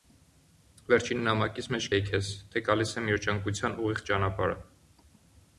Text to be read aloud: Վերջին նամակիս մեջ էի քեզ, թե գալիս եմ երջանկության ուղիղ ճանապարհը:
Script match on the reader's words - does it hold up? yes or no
yes